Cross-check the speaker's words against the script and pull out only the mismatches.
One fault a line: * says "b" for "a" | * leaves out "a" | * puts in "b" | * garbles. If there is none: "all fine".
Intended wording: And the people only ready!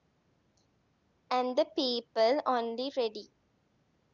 all fine